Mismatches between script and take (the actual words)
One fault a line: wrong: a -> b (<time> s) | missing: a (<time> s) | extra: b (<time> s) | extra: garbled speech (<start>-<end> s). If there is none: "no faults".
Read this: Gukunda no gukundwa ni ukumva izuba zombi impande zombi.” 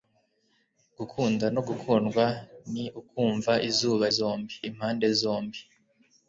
no faults